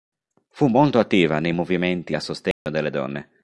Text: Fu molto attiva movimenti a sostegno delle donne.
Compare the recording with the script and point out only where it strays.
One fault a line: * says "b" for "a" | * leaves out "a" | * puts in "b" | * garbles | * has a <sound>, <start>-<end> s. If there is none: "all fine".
* puts in "nei"
* has a dropout, 2.5-2.7 s